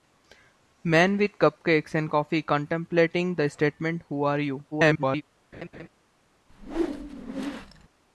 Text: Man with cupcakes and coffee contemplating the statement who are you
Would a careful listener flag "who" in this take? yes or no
no